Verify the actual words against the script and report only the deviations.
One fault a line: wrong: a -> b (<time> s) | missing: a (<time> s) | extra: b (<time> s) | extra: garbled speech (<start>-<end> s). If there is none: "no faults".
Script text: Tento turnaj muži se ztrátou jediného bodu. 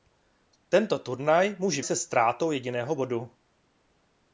no faults